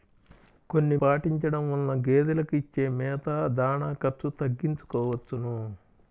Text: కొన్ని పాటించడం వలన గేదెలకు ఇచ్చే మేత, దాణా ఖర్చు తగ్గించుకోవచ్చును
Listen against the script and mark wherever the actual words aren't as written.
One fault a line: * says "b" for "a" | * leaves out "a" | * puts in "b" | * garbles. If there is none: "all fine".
all fine